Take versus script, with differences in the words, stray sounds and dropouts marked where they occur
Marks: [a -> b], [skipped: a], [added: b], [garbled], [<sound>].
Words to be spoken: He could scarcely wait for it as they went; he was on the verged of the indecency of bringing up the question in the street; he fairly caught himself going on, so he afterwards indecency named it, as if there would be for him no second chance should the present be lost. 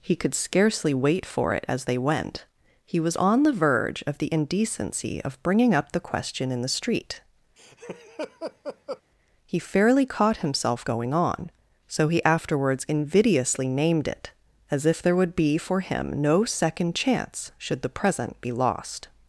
He could scarcely wait for it as they went; he was on the [verged -> verge] of the indecency of bringing up the question in the street; [laugh] he fairly caught himself going on, so he afterwards [indecency -> invidiously] named it, as if there would be for him no second chance should the present be lost.